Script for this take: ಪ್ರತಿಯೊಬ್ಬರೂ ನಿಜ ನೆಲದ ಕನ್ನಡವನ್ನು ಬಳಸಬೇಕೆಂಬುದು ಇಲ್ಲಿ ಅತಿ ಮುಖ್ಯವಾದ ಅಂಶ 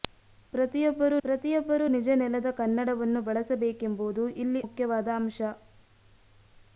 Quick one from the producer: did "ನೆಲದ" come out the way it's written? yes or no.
yes